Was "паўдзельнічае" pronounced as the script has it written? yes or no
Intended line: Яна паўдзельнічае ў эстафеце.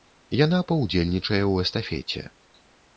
yes